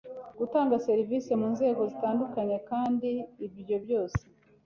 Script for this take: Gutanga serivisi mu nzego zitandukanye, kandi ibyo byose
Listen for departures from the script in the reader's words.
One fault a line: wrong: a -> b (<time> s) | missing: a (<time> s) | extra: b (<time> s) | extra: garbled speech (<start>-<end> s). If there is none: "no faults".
no faults